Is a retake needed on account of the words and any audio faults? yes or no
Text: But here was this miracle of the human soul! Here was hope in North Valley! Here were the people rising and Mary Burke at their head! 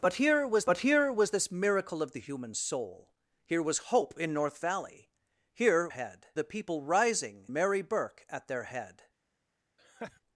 yes